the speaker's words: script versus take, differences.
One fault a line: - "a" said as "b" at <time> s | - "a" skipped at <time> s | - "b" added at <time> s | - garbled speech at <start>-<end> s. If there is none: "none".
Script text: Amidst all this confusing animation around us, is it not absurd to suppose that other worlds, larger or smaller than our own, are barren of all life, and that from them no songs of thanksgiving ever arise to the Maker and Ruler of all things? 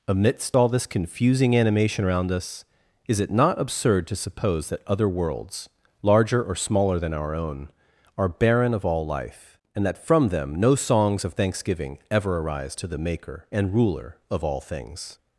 none